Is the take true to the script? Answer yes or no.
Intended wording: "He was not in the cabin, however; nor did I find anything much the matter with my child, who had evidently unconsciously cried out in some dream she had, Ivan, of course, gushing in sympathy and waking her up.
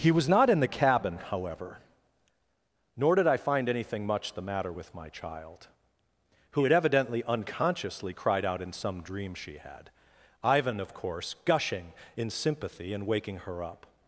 yes